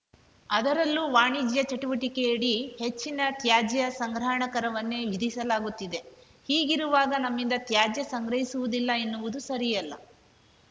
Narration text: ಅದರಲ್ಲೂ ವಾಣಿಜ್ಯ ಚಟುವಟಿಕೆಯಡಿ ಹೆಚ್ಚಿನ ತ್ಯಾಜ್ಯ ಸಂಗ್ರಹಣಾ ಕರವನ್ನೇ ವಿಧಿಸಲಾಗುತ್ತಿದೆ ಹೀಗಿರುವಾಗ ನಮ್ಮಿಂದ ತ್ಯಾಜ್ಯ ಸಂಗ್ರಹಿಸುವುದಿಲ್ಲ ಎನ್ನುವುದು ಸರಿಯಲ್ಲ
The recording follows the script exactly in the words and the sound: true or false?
true